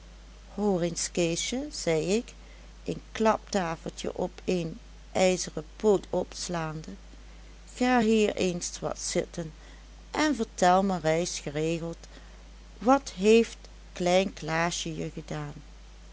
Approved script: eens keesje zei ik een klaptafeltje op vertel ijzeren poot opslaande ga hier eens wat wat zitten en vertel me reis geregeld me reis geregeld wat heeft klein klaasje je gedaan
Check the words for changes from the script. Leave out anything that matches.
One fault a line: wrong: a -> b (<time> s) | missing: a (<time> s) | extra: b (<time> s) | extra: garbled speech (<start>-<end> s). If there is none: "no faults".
wrong: vertel -> een (4.5 s)
missing: wat (9.0 s)
missing: me reis geregeld (12.0 s)